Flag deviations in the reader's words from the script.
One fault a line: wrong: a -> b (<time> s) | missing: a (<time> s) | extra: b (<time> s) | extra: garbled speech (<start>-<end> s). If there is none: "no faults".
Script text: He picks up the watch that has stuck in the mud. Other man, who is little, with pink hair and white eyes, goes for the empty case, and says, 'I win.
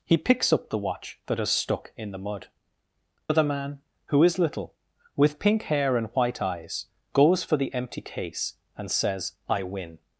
no faults